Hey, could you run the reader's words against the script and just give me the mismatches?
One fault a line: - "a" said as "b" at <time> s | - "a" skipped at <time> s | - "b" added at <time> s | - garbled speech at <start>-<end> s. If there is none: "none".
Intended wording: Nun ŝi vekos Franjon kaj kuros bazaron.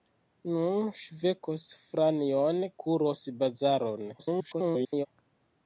- "kaj" skipped at 2.6 s
- garbled speech at 4.2-5.1 s